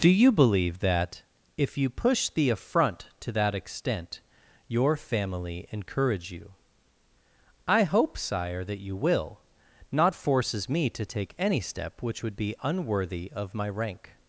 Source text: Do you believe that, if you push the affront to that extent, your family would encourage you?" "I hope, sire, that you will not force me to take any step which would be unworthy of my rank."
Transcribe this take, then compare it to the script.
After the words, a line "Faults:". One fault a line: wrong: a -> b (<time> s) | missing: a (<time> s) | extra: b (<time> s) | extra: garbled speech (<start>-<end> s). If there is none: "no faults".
Do you believe that, if you push the affront to that extent, your family encourage you?" "I hope, sire, that you will not forces me to take any step which would be unworthy of my rank."
Faults:
missing: would (5.7 s)
wrong: force -> forces (10.1 s)